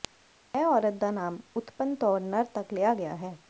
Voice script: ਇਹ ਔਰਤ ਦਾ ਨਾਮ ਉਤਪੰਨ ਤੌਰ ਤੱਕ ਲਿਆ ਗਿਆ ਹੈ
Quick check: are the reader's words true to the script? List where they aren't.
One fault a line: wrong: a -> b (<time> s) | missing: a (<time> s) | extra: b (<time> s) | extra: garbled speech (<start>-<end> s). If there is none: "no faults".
extra: ਨਰ (2.2 s)